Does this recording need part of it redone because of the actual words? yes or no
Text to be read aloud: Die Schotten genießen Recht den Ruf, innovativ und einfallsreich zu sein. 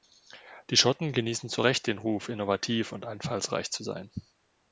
yes